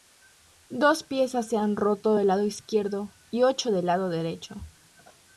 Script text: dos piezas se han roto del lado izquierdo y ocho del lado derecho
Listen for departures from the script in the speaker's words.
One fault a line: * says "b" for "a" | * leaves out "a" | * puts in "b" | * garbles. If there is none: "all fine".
all fine